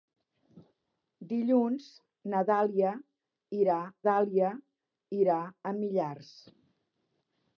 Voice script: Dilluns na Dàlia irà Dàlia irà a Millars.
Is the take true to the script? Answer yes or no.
yes